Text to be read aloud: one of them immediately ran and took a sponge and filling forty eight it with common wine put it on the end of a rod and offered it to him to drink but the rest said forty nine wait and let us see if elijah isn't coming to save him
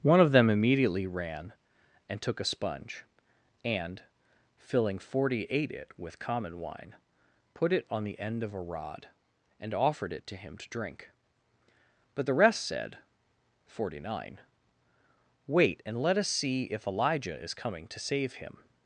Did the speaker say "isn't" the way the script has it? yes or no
no